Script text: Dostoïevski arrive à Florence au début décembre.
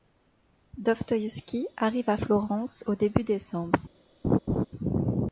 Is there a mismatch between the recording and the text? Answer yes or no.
no